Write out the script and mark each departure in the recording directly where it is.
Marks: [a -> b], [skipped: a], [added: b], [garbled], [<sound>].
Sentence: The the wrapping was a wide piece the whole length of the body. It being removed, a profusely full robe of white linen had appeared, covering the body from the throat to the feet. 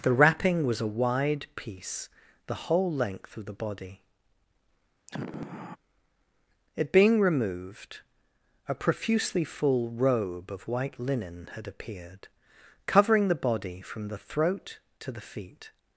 The [skipped: the] wrapping was a wide piece the whole length of the body. [sigh] It being removed, a profusely full robe of white linen had appeared, covering the body from the throat to the feet.